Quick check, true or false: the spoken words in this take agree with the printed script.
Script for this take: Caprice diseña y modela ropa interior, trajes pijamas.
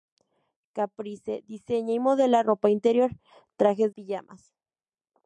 true